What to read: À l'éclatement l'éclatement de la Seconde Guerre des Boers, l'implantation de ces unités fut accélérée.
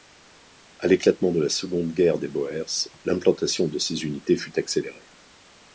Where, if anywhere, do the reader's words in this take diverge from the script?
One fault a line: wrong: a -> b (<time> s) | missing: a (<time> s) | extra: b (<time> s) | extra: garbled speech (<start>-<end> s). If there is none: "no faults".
missing: l'éclatement (1.3 s)